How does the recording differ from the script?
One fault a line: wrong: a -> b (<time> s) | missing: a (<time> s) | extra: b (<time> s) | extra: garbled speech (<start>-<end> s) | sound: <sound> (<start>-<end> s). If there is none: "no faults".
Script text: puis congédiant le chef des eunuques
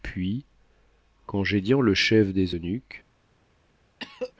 sound: cough (4.0-4.3 s)